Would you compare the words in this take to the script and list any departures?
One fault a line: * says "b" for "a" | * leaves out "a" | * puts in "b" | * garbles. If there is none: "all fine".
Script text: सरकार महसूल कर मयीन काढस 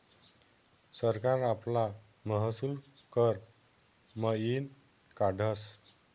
* puts in "आपला"